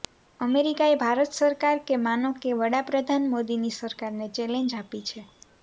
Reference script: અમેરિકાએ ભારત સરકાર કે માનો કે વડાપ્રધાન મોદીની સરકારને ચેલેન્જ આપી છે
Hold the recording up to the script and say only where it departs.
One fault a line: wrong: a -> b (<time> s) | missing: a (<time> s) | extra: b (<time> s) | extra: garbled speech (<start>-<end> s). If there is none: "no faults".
no faults